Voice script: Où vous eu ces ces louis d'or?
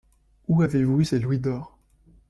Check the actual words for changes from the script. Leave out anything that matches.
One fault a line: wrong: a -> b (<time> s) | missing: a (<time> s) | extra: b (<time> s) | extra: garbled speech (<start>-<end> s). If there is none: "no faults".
extra: avez (0.6 s)
missing: ces (1.2 s)